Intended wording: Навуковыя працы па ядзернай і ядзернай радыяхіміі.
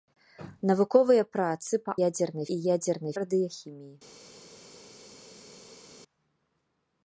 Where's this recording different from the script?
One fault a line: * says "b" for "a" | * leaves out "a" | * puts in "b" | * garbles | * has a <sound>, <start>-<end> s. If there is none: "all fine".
all fine